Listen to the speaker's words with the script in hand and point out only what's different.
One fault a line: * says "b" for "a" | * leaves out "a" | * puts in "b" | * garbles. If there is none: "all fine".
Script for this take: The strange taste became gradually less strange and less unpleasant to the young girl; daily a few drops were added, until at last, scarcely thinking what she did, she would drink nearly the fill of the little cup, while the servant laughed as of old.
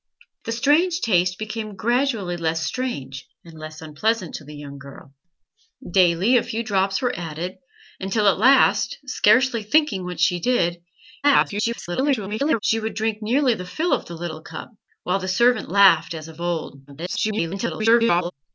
* garbles
* garbles